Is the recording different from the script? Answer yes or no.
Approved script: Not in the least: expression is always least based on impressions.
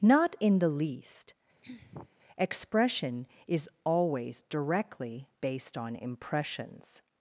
yes